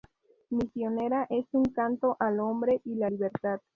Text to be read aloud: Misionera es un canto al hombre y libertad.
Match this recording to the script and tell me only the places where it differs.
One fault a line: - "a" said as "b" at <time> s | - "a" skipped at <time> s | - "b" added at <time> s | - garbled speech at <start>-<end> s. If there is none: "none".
- "la" added at 3.0 s